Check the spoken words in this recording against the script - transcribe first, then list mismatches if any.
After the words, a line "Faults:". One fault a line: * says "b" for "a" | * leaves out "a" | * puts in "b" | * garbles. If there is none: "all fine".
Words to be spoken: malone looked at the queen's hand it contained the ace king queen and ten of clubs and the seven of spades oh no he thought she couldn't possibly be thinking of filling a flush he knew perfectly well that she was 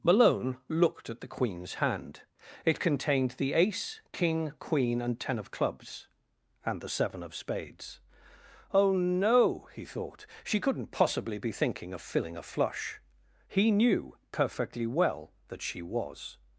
malone looked at the queen's hand it contained the ace king queen and ten of clubs and the seven of spades oh no he thought she couldn't possibly be thinking of filling a flush he knew perfectly well that she was
Faults:
all fine